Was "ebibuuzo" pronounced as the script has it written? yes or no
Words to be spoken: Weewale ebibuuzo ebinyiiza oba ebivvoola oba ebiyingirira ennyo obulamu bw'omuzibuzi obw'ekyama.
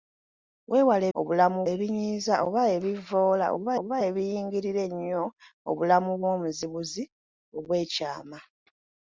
no